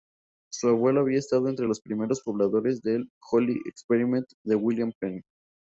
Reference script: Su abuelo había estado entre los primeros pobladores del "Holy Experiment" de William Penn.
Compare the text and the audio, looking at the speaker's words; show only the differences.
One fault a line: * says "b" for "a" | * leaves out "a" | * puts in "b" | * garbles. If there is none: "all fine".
all fine